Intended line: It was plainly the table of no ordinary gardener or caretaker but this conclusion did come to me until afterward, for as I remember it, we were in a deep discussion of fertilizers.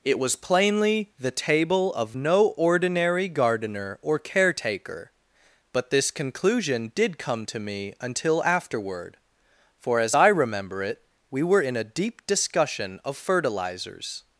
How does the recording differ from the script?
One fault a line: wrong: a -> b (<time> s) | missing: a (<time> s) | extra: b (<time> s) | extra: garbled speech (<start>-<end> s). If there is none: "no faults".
no faults